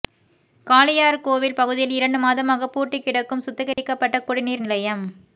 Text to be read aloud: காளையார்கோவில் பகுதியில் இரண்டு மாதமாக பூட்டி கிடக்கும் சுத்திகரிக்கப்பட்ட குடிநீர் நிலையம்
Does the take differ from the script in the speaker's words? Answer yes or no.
no